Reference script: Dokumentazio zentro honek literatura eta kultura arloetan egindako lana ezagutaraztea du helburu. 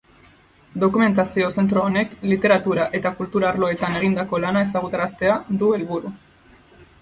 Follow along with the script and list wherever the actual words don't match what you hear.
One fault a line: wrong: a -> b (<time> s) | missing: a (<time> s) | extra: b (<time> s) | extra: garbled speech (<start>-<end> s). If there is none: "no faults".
no faults